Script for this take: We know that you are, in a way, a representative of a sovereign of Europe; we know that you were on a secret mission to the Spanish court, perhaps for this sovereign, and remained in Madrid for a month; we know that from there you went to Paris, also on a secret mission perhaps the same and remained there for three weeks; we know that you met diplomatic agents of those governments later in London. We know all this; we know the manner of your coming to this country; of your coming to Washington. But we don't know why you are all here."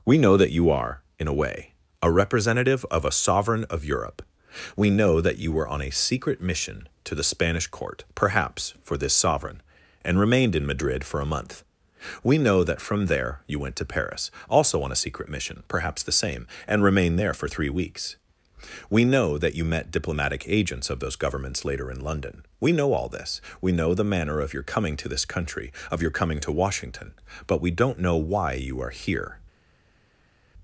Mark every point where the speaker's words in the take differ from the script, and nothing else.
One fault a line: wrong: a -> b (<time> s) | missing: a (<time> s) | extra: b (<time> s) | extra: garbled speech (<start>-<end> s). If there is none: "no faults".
missing: all (28.9 s)